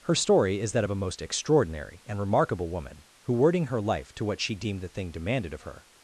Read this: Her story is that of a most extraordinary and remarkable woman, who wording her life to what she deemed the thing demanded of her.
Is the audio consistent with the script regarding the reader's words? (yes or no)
yes